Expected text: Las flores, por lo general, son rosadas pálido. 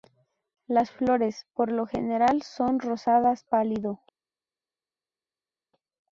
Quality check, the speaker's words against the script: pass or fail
pass